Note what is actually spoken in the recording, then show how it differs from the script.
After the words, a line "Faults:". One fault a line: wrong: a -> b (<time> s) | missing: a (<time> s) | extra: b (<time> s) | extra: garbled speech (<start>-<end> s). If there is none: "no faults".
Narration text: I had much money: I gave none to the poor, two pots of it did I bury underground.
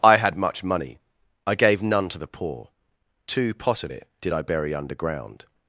I had much money: I gave none to the poor, two pot of it did I bury underground.
Faults:
wrong: pots -> pot (3.5 s)